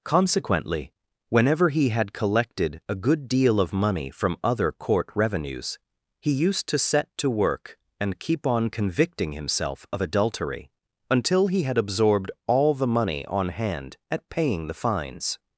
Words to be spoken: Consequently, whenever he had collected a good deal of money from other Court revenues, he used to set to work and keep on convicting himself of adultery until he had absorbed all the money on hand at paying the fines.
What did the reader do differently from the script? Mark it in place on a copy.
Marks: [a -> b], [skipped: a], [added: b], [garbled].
Consequently, whenever he had collected a good deal of money from other Court revenues, he used to set to work and keep on convicting himself of adultery until he had absorbed all the money on hand at paying the fines.